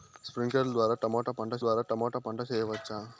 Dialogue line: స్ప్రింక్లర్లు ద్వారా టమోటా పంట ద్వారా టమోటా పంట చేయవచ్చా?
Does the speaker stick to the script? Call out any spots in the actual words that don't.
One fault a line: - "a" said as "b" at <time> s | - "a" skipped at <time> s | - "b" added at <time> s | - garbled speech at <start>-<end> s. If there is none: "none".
none